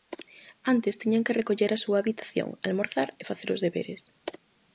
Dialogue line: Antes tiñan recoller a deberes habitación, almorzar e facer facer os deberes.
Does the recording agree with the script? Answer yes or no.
no